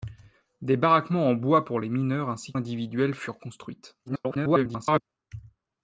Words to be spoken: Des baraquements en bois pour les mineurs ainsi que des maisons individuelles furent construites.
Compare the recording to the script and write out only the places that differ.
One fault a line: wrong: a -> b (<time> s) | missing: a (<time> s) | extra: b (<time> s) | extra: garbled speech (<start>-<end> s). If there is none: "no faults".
missing: que des maisons (2.5 s)
extra: garbled speech (4.1-5.0 s)